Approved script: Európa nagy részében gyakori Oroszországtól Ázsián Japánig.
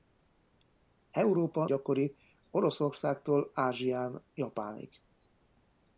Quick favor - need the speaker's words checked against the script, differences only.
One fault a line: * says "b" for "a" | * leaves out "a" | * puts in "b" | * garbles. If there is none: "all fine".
* leaves out "nagy részében"